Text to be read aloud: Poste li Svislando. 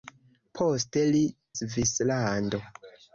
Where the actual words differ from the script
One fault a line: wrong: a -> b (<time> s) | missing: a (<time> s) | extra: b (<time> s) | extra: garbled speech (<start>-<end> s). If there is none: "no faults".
no faults